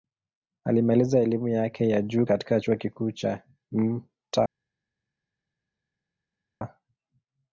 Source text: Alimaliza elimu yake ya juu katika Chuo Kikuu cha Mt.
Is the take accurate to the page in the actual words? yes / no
yes